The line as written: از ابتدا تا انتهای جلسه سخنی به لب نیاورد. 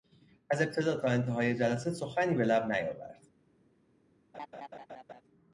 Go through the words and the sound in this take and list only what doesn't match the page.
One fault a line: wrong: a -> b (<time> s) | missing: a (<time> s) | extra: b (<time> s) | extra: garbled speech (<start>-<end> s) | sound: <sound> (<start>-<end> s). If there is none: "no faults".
sound: laugh (4.3-5.2 s)